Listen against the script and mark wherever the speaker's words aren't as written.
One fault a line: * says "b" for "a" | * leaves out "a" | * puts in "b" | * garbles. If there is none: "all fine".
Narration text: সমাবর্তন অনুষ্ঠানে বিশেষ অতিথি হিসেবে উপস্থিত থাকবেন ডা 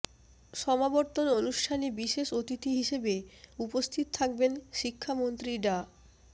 * puts in "শিক্ষামন্ত্রী"